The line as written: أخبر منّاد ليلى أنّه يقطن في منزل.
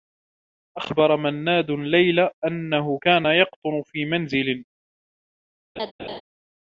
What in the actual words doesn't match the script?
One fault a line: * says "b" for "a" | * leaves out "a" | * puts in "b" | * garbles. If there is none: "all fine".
* puts in "كان"